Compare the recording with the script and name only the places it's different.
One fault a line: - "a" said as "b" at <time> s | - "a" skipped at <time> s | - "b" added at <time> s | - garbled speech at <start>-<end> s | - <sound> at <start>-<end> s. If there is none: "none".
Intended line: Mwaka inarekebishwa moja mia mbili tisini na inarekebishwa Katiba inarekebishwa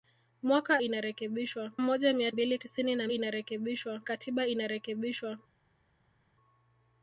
none